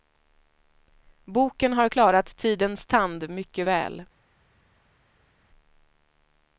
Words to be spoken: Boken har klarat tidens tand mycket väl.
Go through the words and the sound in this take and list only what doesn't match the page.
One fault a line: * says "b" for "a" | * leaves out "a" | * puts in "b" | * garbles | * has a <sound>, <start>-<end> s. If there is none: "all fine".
all fine